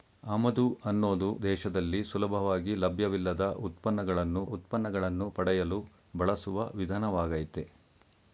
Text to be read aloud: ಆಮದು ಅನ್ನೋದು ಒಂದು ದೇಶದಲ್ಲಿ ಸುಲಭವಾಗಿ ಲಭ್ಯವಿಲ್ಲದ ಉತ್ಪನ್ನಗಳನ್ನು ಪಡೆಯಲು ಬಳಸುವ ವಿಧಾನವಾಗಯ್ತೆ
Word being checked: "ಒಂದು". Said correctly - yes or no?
no